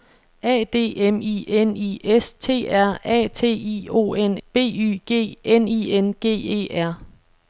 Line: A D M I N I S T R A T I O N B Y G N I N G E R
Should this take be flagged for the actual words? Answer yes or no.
no